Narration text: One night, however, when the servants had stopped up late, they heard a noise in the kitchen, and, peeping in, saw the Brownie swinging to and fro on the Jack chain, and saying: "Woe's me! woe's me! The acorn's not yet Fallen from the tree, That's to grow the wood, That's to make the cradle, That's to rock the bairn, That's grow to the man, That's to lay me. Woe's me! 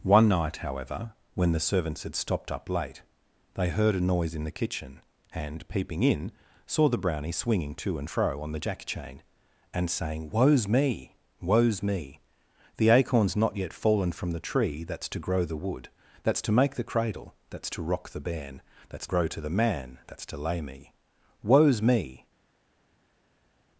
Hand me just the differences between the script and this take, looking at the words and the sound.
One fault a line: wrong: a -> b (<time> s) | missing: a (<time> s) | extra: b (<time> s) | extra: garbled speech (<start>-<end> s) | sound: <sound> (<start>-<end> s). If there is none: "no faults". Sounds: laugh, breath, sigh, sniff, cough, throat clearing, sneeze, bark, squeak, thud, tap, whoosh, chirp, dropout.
no faults